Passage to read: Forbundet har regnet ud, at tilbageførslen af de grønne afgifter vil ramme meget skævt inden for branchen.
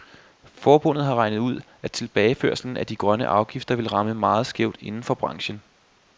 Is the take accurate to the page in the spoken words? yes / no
yes